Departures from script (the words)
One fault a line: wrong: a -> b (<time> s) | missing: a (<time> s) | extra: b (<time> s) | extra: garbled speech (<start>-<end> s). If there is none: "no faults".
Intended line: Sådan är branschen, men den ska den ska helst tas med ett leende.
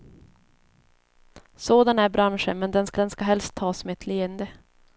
no faults